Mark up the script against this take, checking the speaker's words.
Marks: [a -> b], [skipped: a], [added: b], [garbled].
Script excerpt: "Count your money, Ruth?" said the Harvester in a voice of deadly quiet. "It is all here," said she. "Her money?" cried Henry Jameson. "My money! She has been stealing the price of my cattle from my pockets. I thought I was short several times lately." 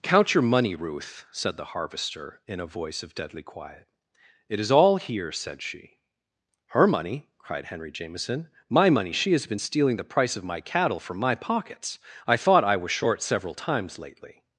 "Count your money, Ruth?" said the Harvester in a voice of deadly quiet. "It is all here," said she. "Her money?" cried Henry Jameson. "My money! She has been stealing the price of my cattle from my pockets. I thought I was short several times lately."